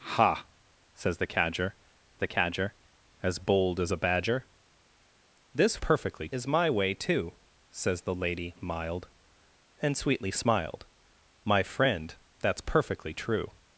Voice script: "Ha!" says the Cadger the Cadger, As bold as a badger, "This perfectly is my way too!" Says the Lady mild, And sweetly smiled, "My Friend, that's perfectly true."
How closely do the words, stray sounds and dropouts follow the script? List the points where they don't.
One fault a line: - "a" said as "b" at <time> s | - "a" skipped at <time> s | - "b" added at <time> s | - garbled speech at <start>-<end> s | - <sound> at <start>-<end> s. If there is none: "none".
none